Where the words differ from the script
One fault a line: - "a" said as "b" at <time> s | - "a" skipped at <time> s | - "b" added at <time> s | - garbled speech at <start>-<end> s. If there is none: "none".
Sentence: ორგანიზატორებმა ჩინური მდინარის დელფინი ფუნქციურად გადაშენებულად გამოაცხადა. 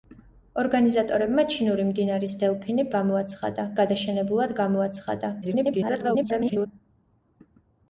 - "ფუნქციურად" said as "გამოაცხადა" at 3.0 s
- garbled speech at 5.4-6.7 s